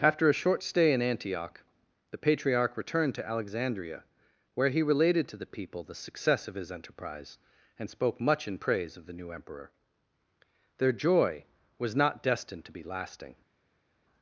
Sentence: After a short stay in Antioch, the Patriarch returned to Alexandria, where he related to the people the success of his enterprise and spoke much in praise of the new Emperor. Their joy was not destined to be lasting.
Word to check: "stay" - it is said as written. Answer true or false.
true